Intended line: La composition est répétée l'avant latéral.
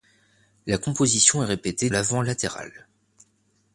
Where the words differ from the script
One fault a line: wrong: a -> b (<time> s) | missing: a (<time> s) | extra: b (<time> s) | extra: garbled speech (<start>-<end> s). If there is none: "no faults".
no faults